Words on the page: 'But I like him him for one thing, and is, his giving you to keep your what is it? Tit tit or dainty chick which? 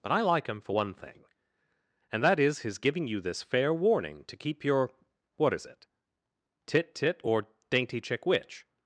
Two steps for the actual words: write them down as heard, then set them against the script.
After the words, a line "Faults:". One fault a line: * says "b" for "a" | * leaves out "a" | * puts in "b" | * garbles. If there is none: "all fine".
'But I like him for one thing, and that is, his giving you this fair warning to keep your what is it? Tit tit or dainty chick which?
Faults:
* leaves out "him"
* puts in "that"
* puts in "this fair warning"